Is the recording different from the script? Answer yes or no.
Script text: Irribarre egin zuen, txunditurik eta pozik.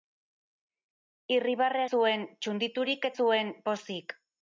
yes